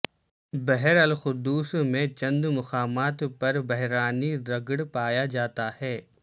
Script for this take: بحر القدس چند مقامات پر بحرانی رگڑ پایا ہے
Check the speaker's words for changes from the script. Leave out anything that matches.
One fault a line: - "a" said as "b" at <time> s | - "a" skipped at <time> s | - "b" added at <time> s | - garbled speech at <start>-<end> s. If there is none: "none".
- "میں" added at 1.9 s
- "جاتا" added at 5.3 s